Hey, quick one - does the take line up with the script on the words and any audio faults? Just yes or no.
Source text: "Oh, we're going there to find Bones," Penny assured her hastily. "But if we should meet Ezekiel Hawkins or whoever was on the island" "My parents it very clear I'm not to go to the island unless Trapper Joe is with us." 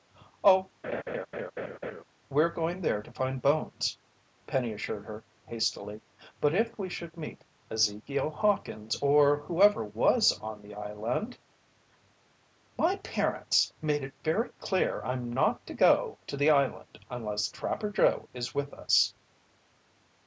no